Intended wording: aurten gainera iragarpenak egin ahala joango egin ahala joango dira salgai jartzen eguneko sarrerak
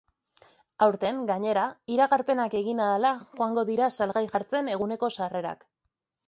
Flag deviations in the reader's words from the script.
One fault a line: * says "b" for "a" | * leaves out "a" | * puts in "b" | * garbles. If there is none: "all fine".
* leaves out "egin ahala joango"